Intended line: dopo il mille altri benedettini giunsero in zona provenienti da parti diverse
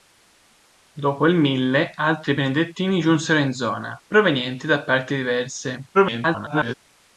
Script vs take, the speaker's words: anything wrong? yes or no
yes